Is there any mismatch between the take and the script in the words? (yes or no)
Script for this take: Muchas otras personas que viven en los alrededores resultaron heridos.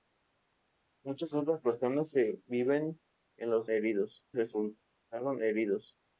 yes